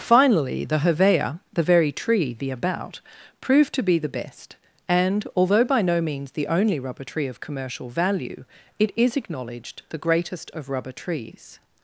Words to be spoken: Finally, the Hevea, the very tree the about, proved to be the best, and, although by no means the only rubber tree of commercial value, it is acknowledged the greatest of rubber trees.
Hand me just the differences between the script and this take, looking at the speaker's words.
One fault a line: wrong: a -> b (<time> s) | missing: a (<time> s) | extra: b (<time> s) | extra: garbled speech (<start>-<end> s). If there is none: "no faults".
no faults